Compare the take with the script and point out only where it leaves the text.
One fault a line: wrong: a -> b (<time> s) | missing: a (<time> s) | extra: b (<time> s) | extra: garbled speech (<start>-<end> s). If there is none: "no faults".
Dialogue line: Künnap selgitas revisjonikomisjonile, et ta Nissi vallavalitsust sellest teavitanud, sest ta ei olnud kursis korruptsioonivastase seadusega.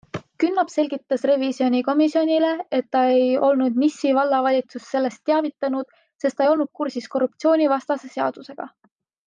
extra: ei olnud (3.2 s)